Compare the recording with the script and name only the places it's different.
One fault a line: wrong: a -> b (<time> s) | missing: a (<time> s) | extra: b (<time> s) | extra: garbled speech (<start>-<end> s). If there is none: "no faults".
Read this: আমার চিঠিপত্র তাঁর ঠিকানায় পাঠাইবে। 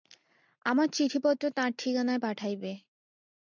no faults